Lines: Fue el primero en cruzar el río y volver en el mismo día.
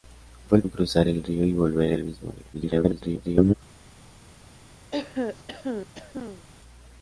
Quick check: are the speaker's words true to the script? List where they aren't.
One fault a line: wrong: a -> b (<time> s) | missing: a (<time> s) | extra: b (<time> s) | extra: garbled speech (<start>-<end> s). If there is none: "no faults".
missing: primero (0.6 s)
missing: en (1.9 s)
extra: garbled speech (2.5-3.5 s)